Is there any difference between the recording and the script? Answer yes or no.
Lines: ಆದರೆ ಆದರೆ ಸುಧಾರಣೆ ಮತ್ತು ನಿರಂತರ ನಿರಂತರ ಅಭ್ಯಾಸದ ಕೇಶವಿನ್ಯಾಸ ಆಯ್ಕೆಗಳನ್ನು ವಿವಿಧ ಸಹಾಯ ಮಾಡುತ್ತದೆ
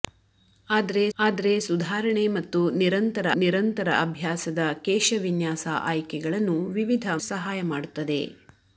no